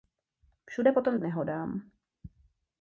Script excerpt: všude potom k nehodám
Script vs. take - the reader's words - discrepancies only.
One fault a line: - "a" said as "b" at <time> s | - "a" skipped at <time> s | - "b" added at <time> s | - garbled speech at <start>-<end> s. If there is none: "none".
none